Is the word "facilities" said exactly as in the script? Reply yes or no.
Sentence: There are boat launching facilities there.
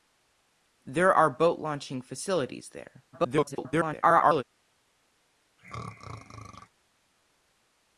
yes